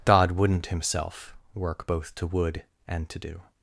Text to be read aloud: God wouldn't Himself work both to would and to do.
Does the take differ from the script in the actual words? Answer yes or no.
no